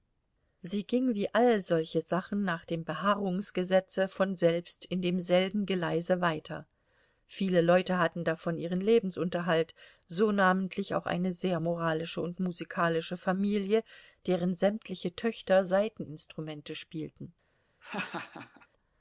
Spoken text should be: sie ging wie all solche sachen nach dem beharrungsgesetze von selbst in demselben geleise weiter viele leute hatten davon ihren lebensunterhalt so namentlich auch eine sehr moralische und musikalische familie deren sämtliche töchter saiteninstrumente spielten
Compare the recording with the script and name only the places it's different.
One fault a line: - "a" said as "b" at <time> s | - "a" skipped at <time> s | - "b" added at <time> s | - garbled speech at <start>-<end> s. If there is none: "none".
none